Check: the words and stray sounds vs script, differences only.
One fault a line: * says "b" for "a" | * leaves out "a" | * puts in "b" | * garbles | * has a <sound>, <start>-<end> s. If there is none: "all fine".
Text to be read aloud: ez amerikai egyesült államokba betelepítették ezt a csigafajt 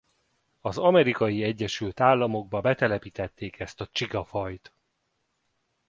* says "az" for "ez"